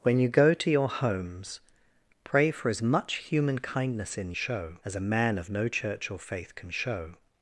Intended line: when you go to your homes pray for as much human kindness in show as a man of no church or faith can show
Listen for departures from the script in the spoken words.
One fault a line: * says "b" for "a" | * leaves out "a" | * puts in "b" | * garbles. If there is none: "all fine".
all fine